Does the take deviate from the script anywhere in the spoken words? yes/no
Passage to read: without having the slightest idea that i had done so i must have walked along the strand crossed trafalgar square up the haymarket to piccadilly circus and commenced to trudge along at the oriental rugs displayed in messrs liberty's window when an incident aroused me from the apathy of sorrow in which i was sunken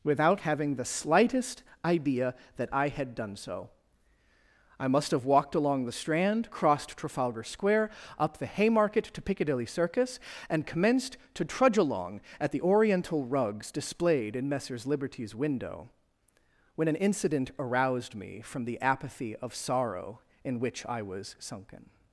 no